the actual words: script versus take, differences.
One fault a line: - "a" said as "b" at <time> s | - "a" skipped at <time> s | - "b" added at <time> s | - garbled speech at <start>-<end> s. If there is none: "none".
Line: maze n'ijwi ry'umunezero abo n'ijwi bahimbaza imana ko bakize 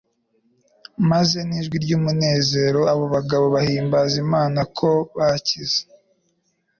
- "n'ijwi" said as "bagabo" at 3.1 s